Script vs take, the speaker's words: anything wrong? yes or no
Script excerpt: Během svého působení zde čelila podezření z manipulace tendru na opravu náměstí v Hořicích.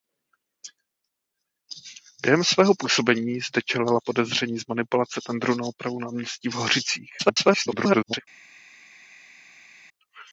yes